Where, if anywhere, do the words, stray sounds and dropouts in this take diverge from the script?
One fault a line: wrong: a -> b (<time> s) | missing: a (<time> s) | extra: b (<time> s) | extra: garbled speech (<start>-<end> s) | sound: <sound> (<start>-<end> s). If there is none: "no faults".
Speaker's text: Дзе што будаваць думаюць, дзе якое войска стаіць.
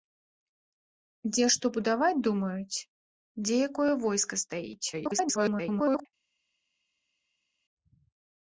extra: garbled speech (4.9-6.1 s)